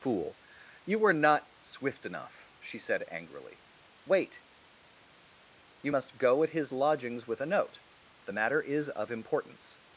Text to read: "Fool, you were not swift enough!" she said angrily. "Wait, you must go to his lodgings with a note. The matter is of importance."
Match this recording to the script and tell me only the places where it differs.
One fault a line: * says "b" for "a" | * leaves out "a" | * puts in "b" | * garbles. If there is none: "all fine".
* says "at" for "to"